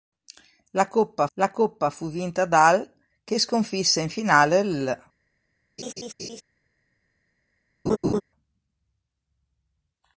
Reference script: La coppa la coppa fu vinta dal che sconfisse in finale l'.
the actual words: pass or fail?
pass